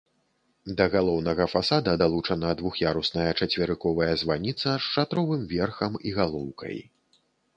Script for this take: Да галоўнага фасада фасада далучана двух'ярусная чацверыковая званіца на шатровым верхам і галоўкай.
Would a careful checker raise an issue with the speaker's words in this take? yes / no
yes